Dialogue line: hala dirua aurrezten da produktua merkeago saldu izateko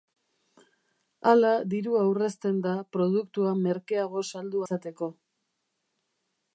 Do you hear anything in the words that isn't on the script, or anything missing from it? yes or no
no